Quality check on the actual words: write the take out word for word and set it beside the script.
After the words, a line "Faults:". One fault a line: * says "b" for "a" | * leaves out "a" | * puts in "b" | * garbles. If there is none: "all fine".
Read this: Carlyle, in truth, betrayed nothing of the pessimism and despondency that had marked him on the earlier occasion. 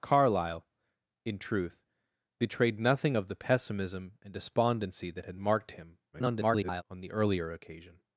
Carlyle, in truth, betrayed nothing of the pessimism and despondency that had marked him [garbled] on the earlier occasion.
Faults:
* garbles